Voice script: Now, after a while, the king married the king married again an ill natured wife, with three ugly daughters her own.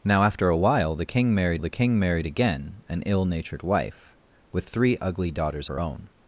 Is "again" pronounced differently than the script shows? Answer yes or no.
no